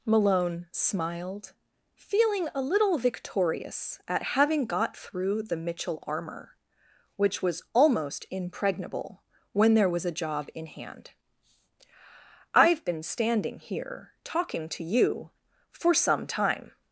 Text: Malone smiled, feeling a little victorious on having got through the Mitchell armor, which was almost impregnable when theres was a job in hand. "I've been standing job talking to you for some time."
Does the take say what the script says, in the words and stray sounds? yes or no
no